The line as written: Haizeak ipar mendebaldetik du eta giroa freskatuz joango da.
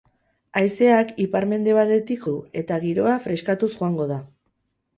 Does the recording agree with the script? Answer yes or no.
yes